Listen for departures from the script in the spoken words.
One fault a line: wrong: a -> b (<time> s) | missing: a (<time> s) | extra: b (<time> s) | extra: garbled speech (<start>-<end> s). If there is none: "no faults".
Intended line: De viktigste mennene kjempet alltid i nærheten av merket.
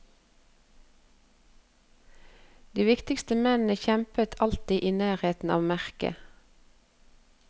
no faults